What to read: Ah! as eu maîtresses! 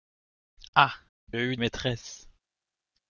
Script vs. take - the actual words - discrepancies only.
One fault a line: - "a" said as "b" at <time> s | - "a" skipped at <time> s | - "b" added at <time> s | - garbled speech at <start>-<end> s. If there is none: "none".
none